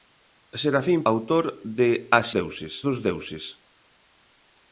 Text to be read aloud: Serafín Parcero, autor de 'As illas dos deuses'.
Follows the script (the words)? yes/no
no